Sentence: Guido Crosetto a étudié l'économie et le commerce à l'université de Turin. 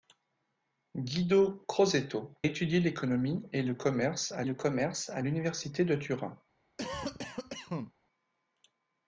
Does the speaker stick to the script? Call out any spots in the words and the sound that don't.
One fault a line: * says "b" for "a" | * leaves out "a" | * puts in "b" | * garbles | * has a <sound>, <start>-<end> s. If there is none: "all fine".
* leaves out "a"
* puts in "le commerce à"
* has a cough, 6.8-7.9 s